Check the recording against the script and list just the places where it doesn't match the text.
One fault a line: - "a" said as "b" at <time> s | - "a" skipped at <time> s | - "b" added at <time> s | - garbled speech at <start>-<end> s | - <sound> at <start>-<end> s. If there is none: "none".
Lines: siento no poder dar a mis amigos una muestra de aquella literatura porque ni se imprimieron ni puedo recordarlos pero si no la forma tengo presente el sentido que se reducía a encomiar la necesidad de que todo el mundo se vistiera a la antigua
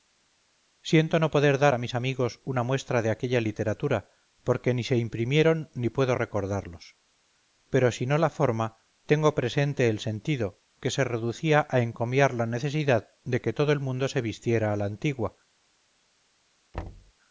- thud at 16.7-17.1 s